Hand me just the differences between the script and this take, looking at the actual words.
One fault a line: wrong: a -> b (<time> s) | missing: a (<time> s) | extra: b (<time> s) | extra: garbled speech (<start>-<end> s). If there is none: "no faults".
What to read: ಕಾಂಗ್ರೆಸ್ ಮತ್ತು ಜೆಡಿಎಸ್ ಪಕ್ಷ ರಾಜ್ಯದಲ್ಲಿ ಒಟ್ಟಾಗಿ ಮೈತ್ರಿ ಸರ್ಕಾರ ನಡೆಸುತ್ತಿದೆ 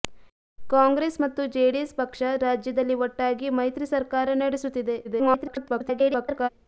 extra: garbled speech (5.0-6.5 s)